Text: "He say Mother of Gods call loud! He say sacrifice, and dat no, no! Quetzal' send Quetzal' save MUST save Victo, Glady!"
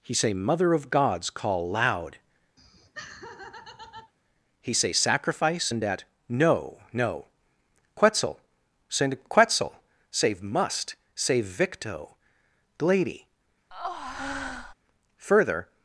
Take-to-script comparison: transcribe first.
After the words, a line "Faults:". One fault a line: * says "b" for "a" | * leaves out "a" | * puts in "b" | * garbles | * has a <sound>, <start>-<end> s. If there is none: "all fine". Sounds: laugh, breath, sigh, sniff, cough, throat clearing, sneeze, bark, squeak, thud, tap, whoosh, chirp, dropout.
"He say Mother of Gods call loud! He say sacrifice, and dat no, no! Quetzal' send Quetzal' save MUST save Victo, Glady!" Further
Faults:
* has a laugh, 2.6-4.1 s
* has a breath, 13.7-14.7 s
* puts in "Further"